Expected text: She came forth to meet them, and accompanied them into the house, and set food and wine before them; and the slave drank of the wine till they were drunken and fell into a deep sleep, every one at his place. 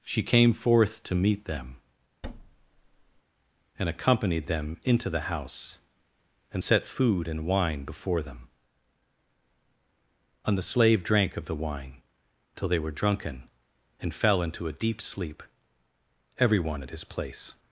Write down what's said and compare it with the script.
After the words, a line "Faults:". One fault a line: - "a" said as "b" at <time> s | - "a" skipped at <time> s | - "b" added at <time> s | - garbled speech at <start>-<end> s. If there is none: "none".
She came forth to meet them, and accompanied them into the house, and set food and wine before them; and the slave drank of the wine till they were drunken and fell into a deep sleep, every one at his place.
Faults:
none